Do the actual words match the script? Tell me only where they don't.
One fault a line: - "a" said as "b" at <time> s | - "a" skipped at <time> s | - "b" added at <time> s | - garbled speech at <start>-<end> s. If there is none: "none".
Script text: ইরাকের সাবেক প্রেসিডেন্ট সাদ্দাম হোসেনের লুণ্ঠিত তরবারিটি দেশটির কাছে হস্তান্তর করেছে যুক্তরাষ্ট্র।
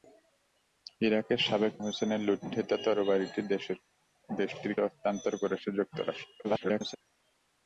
- "প্রেসিডেন্ট সাদ্দাম" skipped at 1.7 s
- "কাছে" skipped at 4.7 s
- garbled speech at 6.4-7.0 s